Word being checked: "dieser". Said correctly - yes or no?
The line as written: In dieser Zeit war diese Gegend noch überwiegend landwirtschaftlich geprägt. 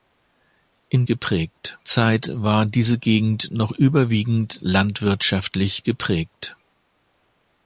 no